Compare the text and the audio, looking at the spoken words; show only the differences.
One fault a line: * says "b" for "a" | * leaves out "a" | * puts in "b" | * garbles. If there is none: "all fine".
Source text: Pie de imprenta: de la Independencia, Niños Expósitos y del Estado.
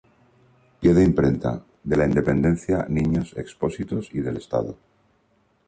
all fine